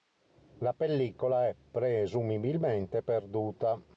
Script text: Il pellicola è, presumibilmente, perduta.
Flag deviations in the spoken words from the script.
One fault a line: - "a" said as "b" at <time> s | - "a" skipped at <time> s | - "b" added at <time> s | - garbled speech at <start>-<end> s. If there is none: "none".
- "Il" said as "La" at 0.6 s